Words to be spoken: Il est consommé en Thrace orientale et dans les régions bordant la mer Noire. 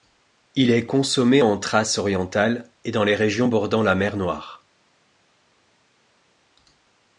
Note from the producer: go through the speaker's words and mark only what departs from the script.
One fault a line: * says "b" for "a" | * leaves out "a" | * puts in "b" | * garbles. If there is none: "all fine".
all fine